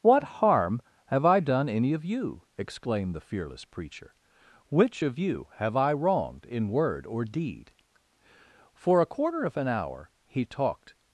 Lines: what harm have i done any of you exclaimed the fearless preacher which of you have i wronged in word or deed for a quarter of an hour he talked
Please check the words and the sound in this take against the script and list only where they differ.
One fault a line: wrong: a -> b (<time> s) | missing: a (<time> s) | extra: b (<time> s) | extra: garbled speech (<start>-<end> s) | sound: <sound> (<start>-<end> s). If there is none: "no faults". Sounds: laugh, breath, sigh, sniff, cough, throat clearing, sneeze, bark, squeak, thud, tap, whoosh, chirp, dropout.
no faults